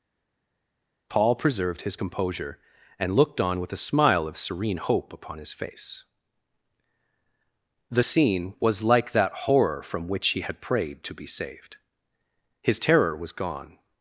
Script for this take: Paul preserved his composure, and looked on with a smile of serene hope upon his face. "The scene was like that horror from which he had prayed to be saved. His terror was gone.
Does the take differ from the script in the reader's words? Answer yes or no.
no